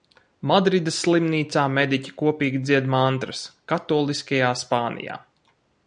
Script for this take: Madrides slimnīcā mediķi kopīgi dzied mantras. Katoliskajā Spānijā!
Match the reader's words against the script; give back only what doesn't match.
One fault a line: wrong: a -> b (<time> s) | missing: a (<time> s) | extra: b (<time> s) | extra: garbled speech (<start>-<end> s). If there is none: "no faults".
no faults